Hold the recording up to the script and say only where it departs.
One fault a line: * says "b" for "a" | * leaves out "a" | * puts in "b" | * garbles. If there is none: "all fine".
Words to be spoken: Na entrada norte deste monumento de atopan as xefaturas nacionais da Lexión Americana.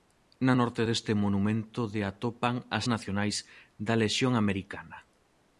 * leaves out "entrada"
* leaves out "xefaturas"